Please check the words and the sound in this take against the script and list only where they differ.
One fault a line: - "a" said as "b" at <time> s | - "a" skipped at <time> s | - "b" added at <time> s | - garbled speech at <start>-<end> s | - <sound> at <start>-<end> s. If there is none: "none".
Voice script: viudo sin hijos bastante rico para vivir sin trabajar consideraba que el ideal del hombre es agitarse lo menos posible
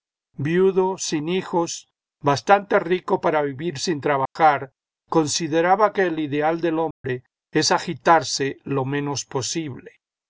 - dropout at 4.3-4.4 s
- dropout at 6.9-7.0 s